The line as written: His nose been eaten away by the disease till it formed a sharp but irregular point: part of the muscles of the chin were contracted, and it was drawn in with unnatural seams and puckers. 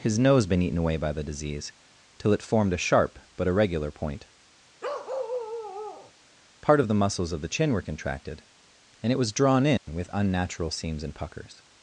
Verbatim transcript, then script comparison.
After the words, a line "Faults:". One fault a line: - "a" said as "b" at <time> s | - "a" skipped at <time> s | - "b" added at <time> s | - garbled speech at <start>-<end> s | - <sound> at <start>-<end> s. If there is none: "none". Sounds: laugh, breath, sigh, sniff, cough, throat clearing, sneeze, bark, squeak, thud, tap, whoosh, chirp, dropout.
His nose been eaten away by the disease till it formed a sharp but irregular point: part of the muscles of the chin were contracted, and it was drawn in with unnatural seams and puckers.
Faults:
- bark at 4.8-6.1 s
- dropout at 9.8-9.9 s